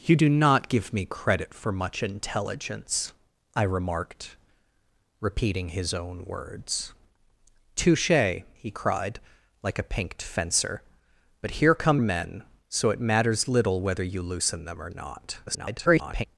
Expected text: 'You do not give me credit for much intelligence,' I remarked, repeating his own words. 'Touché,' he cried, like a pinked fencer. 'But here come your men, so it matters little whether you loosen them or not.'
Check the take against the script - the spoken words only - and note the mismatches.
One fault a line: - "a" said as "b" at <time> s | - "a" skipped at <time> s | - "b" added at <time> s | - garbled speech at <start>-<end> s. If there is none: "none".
- "your" skipped at 12.0 s
- garbled speech at 15.5-16.3 s